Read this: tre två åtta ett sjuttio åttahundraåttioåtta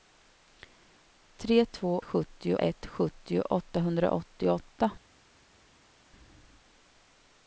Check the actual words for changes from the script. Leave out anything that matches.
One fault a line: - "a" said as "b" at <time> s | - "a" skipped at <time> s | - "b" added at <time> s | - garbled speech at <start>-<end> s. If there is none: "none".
- "åtta" said as "sjuttio" at 2.0 s